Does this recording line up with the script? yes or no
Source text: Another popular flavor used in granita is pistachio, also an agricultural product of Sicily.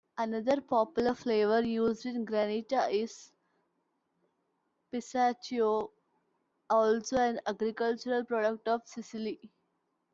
yes